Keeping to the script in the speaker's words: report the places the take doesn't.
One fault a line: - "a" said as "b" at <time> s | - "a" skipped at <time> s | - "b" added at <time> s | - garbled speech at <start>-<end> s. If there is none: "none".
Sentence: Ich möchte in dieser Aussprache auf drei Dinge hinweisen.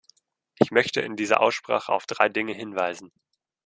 none